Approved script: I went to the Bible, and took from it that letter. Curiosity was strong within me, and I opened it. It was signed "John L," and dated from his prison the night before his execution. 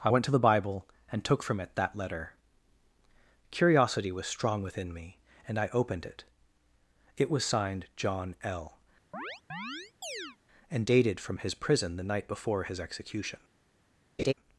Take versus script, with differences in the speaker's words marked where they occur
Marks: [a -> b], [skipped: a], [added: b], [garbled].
I went to the Bible, and took from it that letter. Curiosity was strong within me, and I opened it. It was signed "John L," and dated from his prison the night before his execution.